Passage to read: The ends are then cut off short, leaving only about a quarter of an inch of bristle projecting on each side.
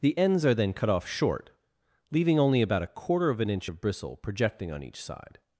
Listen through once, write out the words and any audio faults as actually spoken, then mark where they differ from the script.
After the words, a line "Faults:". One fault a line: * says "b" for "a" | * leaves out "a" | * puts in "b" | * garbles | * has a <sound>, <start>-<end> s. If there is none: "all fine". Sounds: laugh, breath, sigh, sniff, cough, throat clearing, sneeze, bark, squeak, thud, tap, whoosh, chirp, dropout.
The ends are then cut off short, leaving only about a quarter of an inch of bristle projecting on each side.
Faults:
all fine